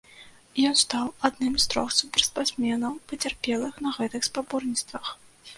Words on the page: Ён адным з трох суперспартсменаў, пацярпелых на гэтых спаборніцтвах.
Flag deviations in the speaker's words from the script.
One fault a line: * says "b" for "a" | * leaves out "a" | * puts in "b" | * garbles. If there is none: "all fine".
* puts in "стаў"